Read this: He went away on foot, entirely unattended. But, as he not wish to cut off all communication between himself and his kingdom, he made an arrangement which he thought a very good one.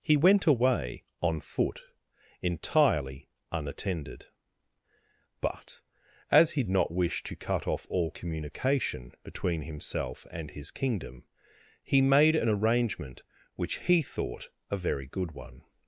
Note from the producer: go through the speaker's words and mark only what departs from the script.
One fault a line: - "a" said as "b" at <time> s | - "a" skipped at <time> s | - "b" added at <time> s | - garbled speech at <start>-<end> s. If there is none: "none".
none